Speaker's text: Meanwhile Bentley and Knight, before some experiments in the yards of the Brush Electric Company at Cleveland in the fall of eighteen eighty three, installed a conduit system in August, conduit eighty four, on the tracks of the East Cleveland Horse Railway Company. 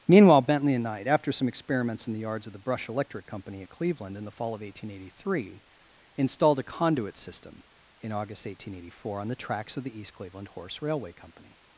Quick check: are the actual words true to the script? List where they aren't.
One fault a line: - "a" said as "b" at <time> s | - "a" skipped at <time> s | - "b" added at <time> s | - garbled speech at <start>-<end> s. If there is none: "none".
- "before" said as "after" at 1.1 s
- "conduit" said as "eighteen" at 8.5 s